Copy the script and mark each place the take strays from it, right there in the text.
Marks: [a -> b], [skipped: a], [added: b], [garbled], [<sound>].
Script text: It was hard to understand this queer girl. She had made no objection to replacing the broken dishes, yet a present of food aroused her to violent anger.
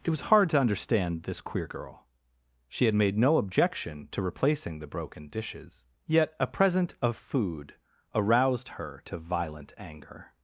It was hard to understand this queer girl. She had made no objection to replacing the broken dishes, yet a present of food aroused her to violent anger.